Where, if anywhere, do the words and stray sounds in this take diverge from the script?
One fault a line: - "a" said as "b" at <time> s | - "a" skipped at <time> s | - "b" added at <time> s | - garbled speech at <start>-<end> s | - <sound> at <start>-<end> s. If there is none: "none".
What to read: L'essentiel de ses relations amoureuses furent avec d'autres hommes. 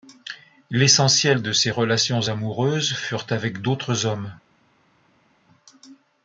none